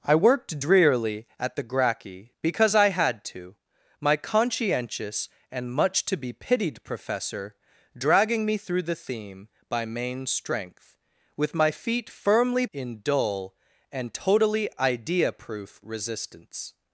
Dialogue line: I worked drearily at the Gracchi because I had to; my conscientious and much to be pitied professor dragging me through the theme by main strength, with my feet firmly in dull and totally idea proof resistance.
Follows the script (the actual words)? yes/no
yes